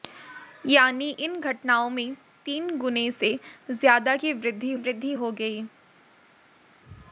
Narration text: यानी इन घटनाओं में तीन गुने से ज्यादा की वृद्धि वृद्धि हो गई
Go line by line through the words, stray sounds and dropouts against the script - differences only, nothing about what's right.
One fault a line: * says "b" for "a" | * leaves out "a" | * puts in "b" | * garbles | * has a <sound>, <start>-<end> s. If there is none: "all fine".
all fine